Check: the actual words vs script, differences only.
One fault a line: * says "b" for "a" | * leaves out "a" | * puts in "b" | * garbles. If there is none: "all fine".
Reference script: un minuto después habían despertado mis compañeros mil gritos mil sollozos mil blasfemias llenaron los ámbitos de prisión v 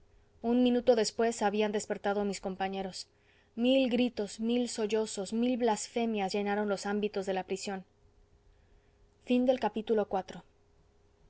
* puts in "la"